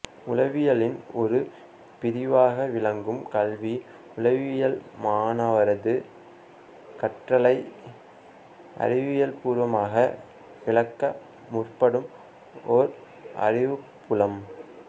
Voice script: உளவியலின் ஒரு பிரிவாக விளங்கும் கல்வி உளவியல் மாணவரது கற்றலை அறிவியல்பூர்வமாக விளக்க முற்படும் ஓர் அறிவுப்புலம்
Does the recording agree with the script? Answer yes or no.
yes